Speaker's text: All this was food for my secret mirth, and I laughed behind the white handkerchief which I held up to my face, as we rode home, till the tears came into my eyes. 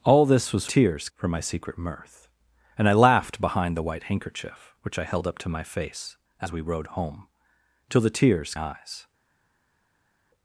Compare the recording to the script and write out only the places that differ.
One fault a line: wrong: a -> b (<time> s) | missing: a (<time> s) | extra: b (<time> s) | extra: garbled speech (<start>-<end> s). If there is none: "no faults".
wrong: food -> tears (0.6 s)
missing: came into my (8.5 s)